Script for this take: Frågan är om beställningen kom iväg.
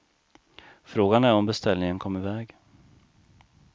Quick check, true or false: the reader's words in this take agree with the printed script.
true